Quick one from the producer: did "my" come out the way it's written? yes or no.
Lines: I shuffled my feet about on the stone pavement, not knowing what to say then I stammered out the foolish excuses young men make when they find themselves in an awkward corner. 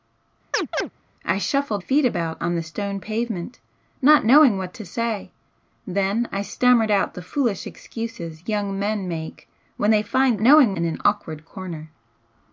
no